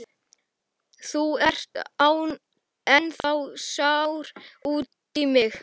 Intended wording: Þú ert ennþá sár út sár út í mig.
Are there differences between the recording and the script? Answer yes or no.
yes